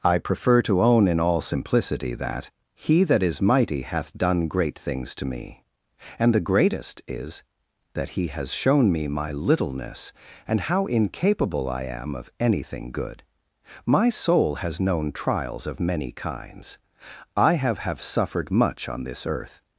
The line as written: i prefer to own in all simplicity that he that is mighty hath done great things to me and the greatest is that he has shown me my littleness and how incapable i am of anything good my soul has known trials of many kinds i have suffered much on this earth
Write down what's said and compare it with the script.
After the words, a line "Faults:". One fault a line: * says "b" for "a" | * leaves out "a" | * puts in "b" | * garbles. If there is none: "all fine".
i prefer to own in all simplicity that he that is mighty hath done great things to me and the greatest is that he has shown me my littleness and how incapable i am of anything good my soul has known trials of many kinds i have have suffered much on this earth
Faults:
* puts in "have"